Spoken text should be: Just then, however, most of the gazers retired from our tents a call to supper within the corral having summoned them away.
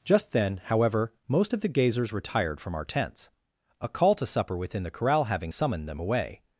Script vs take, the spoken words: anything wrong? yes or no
no